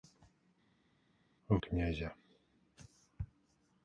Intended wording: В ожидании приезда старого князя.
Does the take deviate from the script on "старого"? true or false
true